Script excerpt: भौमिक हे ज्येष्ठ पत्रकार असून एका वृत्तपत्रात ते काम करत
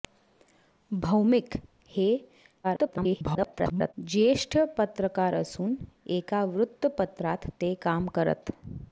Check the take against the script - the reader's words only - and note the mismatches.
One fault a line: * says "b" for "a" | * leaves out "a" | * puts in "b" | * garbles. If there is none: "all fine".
* garbles